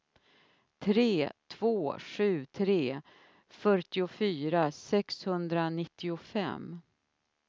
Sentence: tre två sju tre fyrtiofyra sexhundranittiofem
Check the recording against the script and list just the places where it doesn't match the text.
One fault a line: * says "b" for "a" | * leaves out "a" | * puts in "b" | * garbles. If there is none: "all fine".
all fine